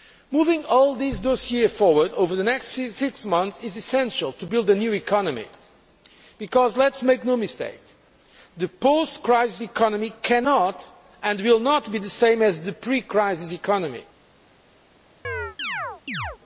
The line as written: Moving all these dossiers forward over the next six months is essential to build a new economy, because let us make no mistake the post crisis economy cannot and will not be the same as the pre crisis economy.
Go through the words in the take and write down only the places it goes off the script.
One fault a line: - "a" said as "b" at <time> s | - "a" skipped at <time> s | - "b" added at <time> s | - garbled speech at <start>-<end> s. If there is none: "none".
none